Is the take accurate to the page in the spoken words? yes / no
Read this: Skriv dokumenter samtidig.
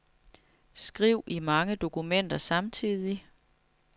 no